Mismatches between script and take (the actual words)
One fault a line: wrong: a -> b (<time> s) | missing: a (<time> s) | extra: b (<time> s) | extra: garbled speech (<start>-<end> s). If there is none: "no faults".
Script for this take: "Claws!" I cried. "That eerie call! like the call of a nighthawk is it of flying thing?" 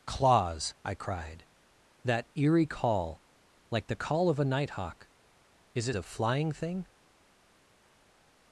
no faults